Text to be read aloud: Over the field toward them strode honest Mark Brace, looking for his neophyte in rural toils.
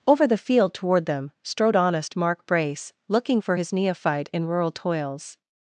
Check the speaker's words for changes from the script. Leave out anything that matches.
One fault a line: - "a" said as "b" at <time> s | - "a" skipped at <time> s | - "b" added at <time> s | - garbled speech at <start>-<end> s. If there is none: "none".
none